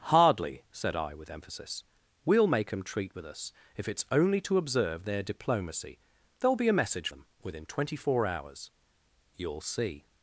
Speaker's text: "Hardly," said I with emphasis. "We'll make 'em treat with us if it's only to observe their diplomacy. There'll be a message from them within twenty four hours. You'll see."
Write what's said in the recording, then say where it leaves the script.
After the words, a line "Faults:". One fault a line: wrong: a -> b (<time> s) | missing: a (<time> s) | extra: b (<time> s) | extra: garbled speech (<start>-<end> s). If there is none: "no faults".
"Hardly," said I with emphasis. "We'll make 'em treat with us if it's only to observe their diplomacy. There'll be a message them within twenty four hours. You'll see."
Faults:
missing: from (7.1 s)